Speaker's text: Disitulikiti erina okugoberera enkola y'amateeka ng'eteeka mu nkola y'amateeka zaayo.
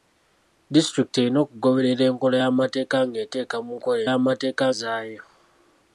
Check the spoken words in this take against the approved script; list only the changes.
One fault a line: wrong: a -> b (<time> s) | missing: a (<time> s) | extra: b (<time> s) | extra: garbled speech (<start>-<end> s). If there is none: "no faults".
no faults